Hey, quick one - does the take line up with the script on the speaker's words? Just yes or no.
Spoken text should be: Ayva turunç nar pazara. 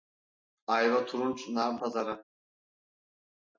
yes